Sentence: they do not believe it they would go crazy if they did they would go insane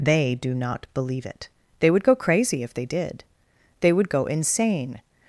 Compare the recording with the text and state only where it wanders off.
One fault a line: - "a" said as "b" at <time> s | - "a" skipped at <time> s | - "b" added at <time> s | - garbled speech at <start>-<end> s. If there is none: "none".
none